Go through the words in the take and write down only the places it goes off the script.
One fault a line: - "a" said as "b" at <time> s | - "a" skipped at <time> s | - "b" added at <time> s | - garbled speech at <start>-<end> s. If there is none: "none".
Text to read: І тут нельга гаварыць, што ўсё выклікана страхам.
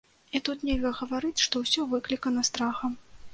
none